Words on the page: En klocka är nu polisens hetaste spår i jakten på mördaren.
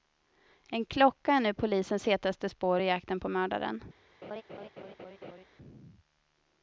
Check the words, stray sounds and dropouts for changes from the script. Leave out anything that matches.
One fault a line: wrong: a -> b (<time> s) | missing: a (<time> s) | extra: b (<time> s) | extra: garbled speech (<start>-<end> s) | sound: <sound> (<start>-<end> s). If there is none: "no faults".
sound: laugh (4.2-5.4 s)